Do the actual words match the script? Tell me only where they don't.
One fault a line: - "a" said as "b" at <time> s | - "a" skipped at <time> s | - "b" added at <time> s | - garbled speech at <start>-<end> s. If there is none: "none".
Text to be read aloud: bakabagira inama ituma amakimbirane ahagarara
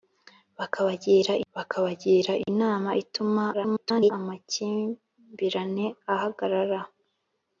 - "bakabagira" added at 1.5 s
- garbled speech at 3.5-4.1 s